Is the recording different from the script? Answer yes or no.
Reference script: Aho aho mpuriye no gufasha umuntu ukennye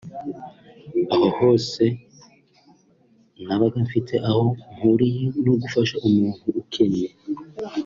yes